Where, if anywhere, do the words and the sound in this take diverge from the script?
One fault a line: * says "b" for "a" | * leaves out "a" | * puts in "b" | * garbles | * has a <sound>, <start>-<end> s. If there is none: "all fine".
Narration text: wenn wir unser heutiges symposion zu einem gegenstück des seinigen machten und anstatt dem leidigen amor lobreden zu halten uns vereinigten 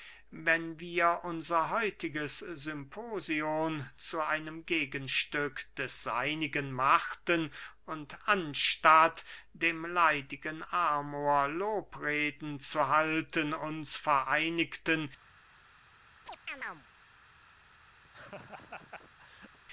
* has a chirp, 16.3-16.9 s
* has a laugh, 18.0-19.6 s